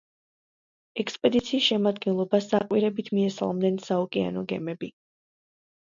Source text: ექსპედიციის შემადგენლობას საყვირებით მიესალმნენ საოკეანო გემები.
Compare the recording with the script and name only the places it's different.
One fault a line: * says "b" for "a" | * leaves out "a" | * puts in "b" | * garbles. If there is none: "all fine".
all fine